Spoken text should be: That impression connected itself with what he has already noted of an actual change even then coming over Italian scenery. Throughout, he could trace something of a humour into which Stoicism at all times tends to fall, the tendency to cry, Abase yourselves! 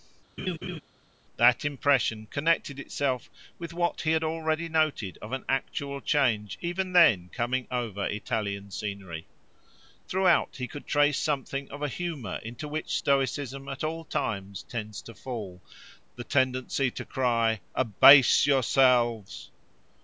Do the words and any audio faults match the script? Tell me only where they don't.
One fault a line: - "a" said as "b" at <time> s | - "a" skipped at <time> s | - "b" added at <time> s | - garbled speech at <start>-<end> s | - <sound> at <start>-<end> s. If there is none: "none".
- laugh at 0.4-0.8 s
- "has" said as "had" at 4.1 s